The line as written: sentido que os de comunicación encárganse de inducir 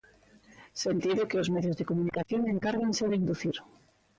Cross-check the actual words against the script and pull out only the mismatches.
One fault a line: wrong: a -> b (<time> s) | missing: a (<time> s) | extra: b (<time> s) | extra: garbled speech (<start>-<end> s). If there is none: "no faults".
extra: medios (1.6 s)